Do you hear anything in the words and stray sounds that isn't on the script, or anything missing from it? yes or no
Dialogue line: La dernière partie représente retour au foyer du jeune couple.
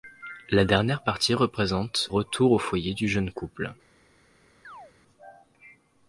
yes